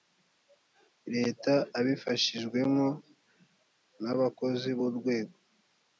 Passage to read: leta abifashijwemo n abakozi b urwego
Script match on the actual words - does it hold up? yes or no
yes